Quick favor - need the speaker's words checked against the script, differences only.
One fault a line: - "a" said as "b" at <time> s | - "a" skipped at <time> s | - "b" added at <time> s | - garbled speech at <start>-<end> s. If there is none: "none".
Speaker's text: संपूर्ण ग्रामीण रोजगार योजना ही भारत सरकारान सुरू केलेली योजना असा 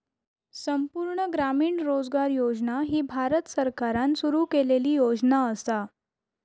none